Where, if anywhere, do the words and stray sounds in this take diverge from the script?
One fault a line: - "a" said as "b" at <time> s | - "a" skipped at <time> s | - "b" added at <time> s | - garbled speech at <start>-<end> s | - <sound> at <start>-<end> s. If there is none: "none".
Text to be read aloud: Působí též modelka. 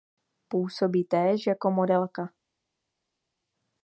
- "jako" added at 1.5 s